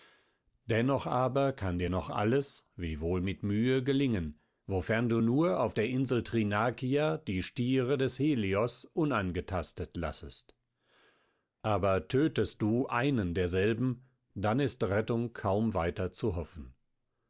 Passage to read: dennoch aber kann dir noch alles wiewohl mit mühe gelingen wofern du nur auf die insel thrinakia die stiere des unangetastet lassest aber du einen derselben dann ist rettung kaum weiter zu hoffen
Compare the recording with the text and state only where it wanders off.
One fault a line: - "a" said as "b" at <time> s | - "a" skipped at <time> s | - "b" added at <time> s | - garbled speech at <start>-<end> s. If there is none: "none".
- "die" said as "der" at 5.7 s
- "helios" added at 8.2 s
- "tötest" added at 12.1 s